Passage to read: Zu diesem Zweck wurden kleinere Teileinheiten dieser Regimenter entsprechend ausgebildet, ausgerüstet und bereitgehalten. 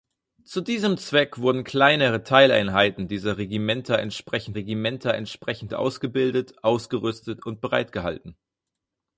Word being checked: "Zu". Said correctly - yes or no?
yes